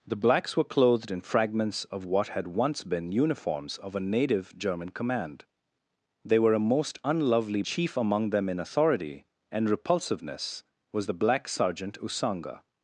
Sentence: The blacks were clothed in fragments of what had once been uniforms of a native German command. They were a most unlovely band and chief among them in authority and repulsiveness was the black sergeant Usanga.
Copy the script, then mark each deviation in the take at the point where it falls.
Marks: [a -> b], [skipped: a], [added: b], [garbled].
The blacks were clothed in fragments of what had once been uniforms of a native German command. They were a most unlovely [skipped: band and] chief among them in authority and repulsiveness was the black sergeant Usanga.